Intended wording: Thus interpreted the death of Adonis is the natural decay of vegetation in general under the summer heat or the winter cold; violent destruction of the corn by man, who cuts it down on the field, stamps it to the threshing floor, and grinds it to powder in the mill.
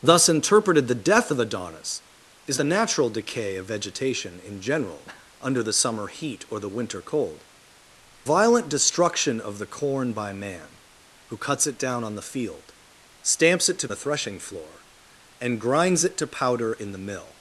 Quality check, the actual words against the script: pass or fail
pass